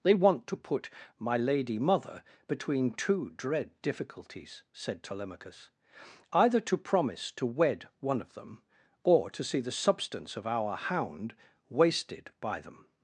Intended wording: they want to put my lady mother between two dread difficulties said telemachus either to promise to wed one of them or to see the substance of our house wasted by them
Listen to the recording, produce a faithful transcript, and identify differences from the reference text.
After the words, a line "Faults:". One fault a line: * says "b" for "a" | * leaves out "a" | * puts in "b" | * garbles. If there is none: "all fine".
they want to put my lady mother between two dread difficulties said telemachus either to promise to wed one of them or to see the substance of our hound wasted by them
Faults:
* says "hound" for "house"